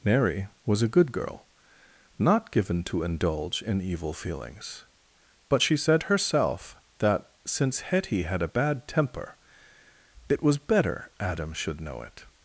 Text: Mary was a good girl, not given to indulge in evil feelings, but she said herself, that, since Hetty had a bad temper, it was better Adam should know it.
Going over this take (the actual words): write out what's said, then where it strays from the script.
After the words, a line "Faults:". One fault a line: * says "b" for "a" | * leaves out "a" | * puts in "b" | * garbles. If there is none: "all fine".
Mary was a good girl, not given to indulge in evil feelings, but she said herself, that, since Hetty had a bad temper, it was better Adam should know it.
Faults:
all fine